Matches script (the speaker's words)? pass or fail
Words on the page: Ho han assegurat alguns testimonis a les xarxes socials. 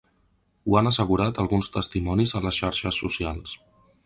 pass